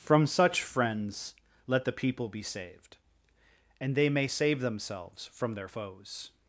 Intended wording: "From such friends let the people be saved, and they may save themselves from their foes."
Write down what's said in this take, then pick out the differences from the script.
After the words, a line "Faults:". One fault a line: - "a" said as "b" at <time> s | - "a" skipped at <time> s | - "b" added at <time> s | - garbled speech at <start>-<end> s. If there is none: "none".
"From such friends let the people be saved, and they may save themselves from their foes."
Faults:
none